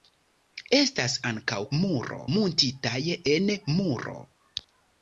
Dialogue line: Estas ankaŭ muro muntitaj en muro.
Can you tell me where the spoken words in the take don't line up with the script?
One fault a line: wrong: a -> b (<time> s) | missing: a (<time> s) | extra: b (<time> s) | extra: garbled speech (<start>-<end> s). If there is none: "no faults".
no faults